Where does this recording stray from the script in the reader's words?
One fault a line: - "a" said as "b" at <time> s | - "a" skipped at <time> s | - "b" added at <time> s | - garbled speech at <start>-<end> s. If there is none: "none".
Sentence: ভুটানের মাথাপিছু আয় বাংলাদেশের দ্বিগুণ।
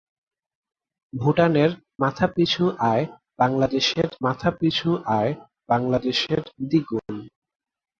- "মাথাপিছু আয় বাংলাদেশের" added at 4.2 s